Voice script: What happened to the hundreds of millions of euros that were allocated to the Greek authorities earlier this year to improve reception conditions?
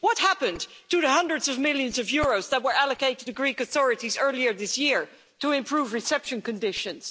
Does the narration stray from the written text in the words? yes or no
yes